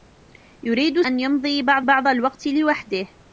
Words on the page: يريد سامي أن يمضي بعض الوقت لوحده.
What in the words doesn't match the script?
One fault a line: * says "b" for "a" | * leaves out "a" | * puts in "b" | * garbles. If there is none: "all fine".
* leaves out "سامي"
* puts in "بعض"